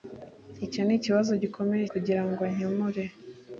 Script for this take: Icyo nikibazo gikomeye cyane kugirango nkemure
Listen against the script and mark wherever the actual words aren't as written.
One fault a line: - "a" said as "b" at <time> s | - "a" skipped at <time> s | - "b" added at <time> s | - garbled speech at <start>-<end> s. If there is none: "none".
- "cyane" skipped at 1.9 s